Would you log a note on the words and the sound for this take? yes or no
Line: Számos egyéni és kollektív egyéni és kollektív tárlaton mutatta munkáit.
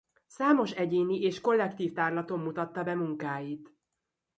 yes